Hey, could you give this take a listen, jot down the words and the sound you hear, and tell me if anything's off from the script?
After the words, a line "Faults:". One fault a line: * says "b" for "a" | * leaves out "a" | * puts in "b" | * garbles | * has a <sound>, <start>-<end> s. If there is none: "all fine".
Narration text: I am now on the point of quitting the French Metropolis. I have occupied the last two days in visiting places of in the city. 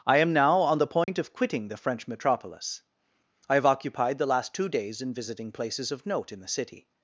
I am now on the point of quitting the French Metropolis. I have occupied the last two days in visiting places of note in the city.
Faults:
* has a dropout, 1.0-1.1 s
* puts in "note"